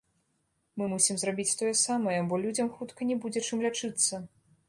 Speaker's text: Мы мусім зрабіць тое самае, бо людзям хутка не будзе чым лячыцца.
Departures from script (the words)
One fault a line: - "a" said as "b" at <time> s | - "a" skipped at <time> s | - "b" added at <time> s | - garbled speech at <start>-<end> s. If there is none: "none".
none